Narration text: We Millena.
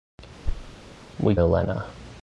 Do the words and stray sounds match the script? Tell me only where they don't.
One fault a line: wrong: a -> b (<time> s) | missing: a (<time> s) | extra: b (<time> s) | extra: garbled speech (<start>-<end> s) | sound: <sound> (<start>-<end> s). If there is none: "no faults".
sound: thud (0.4-0.8 s)